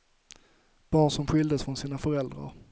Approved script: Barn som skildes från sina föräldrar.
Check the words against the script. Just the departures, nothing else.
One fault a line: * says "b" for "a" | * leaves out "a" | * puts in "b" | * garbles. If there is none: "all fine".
all fine